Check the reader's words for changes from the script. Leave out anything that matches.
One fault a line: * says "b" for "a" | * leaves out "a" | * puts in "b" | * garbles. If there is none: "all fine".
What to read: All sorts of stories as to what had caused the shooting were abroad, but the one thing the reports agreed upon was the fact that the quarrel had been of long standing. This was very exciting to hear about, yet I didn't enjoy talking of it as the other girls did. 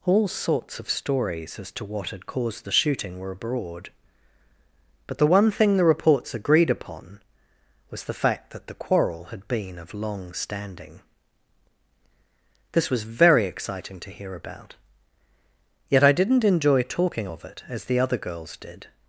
all fine